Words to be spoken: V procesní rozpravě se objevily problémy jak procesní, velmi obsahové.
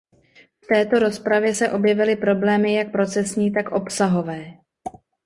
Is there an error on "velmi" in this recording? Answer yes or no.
yes